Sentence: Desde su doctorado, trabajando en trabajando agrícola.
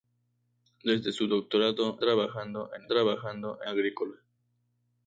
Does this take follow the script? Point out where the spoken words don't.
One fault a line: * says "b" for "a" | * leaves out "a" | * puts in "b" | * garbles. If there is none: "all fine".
all fine